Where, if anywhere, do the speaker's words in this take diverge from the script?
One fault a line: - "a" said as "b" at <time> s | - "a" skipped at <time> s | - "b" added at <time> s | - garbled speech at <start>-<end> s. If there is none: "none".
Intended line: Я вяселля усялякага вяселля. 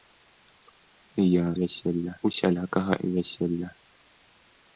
none